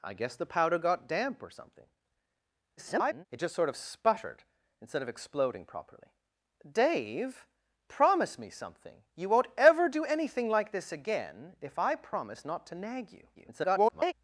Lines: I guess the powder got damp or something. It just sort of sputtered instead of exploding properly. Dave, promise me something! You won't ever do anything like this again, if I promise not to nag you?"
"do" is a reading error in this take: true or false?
false